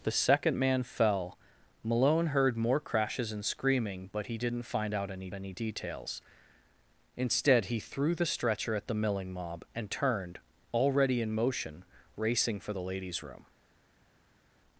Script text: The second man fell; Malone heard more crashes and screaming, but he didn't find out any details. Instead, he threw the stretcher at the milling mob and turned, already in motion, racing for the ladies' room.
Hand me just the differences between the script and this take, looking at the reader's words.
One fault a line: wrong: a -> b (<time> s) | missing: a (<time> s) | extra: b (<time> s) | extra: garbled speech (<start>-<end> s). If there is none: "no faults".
extra: any (5.3 s)